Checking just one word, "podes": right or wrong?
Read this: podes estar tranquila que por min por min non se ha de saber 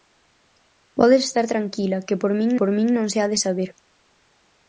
right